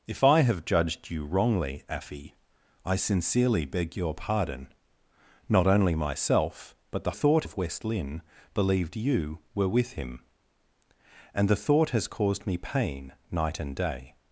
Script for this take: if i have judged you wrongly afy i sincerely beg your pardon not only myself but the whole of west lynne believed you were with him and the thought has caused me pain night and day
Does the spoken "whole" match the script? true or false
false